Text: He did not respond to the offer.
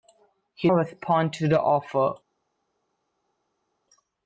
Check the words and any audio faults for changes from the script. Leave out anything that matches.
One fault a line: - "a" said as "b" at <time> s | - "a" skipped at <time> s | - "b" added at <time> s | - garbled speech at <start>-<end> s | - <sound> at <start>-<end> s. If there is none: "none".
- "did not" skipped at 0.7 s